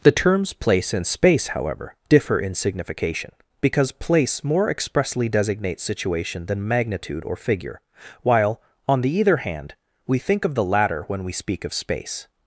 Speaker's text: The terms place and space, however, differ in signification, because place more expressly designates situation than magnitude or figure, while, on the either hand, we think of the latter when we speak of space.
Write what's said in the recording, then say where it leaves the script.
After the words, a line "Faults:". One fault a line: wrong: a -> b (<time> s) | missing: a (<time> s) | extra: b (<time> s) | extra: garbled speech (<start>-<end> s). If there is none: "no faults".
The terms place and space, however, differ in signification, because place more expressly designates situation than magnitude or figure, while, on the either hand, we think of the latter when we speak of space.
Faults:
no faults